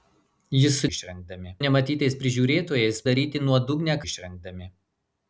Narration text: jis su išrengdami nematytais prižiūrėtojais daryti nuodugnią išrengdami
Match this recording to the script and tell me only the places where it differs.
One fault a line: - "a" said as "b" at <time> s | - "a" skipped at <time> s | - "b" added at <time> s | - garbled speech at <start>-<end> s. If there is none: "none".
none